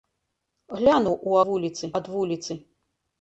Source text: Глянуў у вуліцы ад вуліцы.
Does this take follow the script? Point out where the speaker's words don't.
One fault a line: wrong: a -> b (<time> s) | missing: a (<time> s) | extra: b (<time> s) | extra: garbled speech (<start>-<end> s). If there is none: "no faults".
no faults